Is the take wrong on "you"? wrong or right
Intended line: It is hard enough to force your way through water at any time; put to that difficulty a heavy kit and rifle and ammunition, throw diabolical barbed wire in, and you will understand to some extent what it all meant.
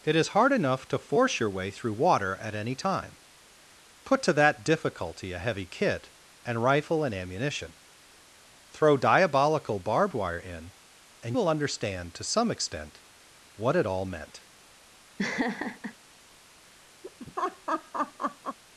wrong